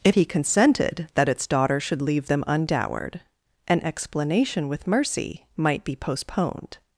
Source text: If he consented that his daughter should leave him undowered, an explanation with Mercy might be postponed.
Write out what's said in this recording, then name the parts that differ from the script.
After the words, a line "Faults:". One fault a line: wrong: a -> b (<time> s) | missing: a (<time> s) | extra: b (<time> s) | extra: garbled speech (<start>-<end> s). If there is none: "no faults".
If he consented that its daughter should leave them undowered, an explanation with Mercy might be postponed.
Faults:
wrong: his -> its (1.3 s)
wrong: him -> them (2.3 s)